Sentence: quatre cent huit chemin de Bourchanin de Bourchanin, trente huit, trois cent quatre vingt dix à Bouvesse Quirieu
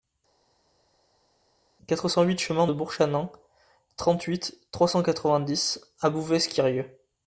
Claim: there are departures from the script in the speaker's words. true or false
true